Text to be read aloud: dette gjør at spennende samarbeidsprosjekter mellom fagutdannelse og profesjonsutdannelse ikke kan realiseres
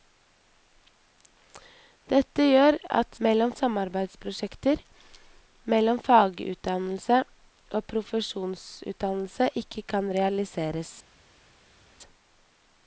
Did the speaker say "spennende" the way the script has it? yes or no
no